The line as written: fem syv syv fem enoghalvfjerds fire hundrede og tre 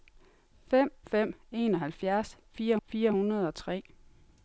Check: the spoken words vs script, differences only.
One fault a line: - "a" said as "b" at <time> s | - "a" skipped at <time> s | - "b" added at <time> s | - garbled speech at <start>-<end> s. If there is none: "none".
- "syv syv" skipped at 0.9 s
- "fire" added at 2.9 s